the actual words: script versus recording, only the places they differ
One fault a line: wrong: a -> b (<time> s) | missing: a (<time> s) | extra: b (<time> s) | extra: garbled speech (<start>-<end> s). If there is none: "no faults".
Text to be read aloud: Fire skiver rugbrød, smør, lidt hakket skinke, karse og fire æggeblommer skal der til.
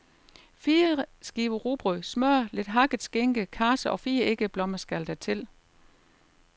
no faults